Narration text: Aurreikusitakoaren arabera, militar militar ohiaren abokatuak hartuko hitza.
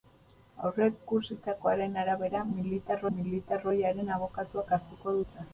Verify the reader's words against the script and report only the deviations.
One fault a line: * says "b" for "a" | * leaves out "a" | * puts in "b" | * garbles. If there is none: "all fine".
all fine